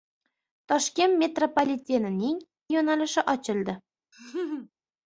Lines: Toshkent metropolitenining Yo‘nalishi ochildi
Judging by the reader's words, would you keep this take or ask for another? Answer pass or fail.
pass